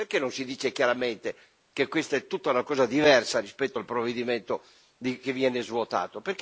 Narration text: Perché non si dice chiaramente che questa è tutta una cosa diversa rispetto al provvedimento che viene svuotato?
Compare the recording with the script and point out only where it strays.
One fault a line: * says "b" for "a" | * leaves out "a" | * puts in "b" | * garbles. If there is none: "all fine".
all fine